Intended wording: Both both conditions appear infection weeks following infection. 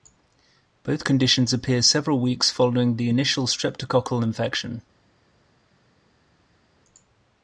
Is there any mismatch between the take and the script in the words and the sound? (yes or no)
yes